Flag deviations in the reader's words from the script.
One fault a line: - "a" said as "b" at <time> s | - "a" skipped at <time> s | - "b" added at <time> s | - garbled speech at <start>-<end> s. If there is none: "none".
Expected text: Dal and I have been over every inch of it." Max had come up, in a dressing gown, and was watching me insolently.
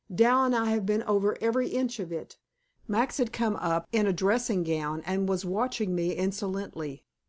none